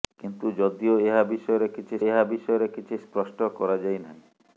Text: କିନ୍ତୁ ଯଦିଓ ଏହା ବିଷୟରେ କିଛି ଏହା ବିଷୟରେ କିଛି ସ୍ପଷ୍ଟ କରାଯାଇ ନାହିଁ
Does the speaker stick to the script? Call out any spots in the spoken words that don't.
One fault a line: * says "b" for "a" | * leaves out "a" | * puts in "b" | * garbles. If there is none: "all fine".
all fine